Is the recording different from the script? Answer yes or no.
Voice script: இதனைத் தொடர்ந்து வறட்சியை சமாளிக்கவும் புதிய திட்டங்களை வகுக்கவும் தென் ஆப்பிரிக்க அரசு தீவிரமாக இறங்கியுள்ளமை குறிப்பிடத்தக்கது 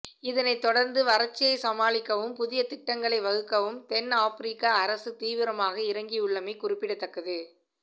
no